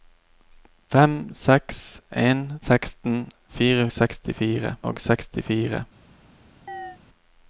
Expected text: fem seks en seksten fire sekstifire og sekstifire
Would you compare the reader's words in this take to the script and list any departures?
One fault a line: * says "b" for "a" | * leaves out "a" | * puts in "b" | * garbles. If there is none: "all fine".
all fine